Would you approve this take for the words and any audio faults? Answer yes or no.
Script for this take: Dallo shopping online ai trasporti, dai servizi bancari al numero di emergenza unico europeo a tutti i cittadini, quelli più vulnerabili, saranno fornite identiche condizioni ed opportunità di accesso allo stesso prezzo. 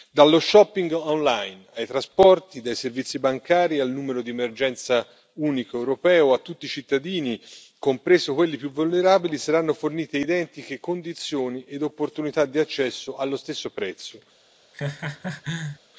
no